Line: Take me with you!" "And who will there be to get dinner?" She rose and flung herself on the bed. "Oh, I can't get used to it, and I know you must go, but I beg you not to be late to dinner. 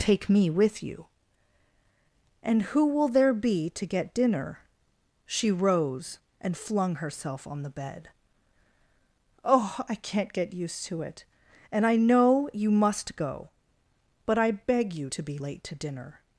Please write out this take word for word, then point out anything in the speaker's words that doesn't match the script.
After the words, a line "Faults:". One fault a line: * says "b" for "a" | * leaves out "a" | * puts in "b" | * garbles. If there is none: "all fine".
Take me with you!" "And who will there be to get dinner?" She rose and flung herself on the bed. "Oh, I can't get used to it, and I know you must go, but I beg you to be late to dinner.
Faults:
* leaves out "not"